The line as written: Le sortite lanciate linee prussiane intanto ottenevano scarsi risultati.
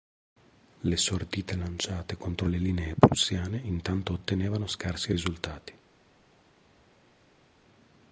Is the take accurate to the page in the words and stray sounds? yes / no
no